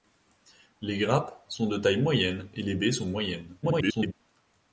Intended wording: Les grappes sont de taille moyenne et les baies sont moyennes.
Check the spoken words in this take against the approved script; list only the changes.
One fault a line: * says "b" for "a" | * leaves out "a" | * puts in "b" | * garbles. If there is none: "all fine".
* garbles